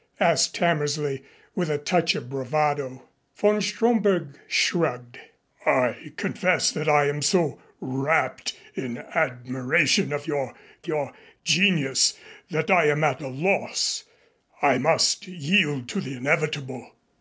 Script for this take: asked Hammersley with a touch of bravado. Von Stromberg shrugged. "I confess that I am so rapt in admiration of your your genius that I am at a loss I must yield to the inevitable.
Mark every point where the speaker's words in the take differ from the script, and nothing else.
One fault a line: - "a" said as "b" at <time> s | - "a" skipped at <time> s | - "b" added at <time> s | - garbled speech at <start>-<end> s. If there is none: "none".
none